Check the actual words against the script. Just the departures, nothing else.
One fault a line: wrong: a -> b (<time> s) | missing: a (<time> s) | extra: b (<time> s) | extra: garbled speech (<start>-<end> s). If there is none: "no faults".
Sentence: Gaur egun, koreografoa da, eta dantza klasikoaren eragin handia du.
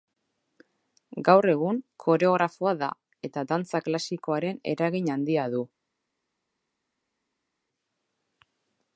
no faults